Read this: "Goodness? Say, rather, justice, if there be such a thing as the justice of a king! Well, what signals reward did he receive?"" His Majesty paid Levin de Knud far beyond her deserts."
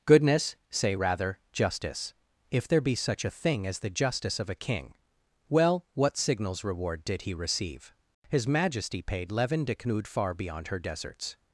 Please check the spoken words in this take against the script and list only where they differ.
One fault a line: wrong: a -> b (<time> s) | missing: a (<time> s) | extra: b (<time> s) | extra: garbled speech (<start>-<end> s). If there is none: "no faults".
no faults